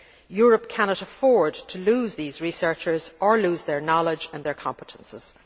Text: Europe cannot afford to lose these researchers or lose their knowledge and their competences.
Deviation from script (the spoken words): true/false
false